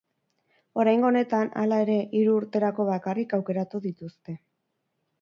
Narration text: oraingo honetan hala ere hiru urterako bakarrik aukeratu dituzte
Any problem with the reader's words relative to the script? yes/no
no